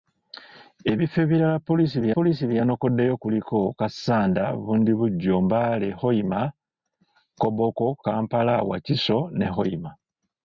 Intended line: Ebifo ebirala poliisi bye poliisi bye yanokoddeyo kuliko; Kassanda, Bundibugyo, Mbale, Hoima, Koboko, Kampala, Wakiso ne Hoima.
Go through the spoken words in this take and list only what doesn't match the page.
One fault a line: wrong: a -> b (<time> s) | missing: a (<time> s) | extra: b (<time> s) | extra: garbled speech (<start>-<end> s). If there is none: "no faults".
no faults